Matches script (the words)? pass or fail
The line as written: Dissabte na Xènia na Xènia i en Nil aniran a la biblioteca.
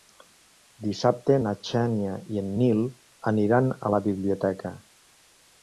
fail